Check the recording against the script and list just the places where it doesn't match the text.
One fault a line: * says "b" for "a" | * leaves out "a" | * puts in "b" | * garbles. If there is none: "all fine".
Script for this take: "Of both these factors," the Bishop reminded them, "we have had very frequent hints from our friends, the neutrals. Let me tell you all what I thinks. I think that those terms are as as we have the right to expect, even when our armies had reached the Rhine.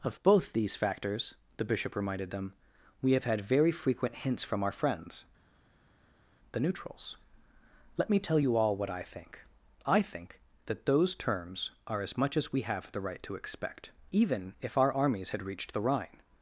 * says "think" for "thinks"
* puts in "much"
* says "if" for "when"